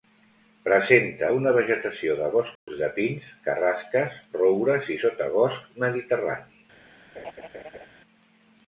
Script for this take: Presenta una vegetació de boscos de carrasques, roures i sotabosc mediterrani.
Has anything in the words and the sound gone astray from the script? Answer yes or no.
yes